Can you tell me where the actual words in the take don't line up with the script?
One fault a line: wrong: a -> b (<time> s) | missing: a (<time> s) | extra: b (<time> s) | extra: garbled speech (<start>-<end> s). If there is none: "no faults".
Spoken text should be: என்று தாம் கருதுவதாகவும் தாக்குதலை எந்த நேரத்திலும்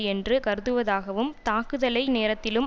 missing: தாம் (0.3 s)
missing: எந்த (2.1 s)